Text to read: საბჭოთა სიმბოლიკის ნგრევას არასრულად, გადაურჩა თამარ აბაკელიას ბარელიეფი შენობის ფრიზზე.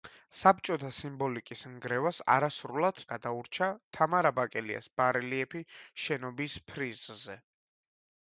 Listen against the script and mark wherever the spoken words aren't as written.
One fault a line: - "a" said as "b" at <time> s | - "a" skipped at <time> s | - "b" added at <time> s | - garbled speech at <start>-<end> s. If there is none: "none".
none